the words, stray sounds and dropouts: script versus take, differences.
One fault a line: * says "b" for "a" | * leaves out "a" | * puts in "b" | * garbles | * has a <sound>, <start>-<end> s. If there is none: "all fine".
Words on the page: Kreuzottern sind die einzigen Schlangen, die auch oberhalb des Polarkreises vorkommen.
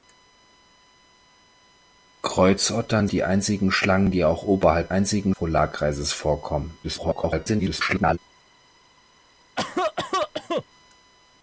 * leaves out "sind"
* says "einzigen" for "des"
* garbles
* has a cough, 9.6-10.6 s